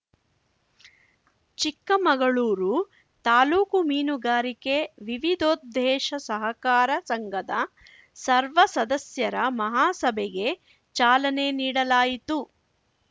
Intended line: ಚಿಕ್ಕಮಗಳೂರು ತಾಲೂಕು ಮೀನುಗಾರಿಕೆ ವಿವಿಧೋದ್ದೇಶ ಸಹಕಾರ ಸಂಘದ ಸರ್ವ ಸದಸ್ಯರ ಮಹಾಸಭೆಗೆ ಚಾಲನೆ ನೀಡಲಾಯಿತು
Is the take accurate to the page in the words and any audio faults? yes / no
yes